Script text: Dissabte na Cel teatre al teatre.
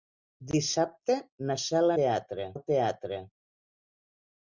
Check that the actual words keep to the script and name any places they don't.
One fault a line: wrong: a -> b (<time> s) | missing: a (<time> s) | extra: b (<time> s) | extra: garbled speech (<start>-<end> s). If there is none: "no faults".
no faults